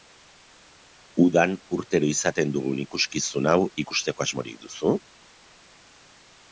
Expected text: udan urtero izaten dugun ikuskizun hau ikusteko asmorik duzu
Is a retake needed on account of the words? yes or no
no